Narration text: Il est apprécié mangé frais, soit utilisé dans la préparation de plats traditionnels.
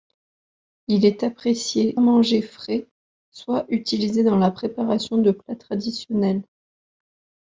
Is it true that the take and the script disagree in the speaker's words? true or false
false